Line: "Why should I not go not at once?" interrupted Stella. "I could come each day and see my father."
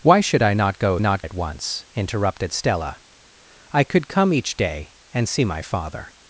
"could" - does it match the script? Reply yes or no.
yes